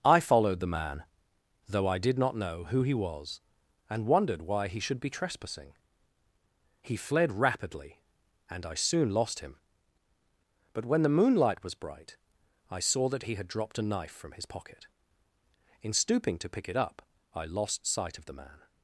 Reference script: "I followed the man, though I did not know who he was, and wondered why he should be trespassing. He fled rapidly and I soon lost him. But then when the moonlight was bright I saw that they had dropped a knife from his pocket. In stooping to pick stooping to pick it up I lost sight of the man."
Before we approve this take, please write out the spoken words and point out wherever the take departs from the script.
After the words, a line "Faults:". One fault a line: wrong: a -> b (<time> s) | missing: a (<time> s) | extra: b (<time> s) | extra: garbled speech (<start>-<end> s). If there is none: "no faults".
"I followed the man, though I did not know who he was, and wondered why he should be trespassing. He fled rapidly and I soon lost him. But when the moonlight was bright I saw that he had dropped a knife from his pocket. In stooping to pick it up I lost sight of the man."
Faults:
missing: then (10.8 s)
wrong: they -> he (13.2 s)
missing: stooping to pick (16.7 s)